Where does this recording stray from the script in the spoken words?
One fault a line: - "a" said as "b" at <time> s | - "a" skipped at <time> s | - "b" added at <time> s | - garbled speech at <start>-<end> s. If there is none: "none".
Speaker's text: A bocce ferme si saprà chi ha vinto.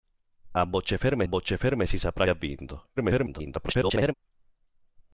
- "bocce ferme" added at 1.2 s
- "chi" skipped at 2.3 s
- garbled speech at 3.0-4.1 s